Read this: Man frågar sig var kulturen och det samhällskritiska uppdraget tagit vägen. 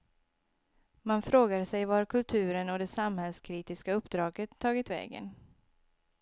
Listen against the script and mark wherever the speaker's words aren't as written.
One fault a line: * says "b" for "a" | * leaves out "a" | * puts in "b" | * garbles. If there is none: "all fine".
all fine